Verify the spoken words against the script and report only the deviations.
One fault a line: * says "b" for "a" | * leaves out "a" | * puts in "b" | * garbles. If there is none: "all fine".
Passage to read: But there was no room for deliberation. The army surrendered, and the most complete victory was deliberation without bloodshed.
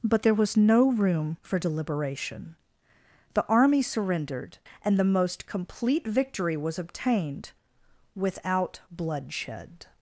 * says "obtained" for "deliberation"